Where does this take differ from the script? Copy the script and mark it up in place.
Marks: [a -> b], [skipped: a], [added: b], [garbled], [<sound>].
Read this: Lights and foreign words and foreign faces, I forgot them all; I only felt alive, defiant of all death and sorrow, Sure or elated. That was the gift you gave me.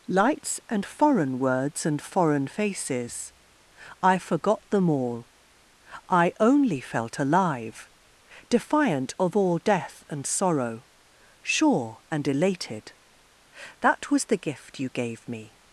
Lights and foreign words and foreign faces, I forgot them all; I only felt alive, defiant of all death and sorrow, Sure [or -> and] elated. That was the gift you gave me.